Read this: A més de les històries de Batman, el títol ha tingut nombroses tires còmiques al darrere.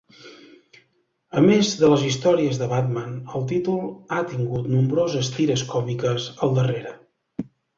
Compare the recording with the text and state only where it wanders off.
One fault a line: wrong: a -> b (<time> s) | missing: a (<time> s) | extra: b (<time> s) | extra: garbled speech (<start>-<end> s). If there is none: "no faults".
no faults